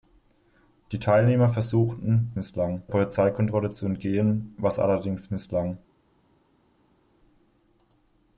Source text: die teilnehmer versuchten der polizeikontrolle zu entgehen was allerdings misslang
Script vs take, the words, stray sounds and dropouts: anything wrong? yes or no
yes